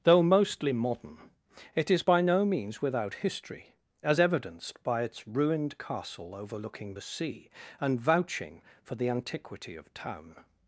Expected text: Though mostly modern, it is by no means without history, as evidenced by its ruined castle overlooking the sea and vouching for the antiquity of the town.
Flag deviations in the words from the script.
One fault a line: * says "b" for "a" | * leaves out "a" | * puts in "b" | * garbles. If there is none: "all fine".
* leaves out "the"